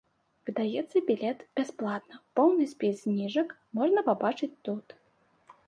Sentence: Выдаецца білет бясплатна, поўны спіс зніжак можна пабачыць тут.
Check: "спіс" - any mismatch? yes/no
no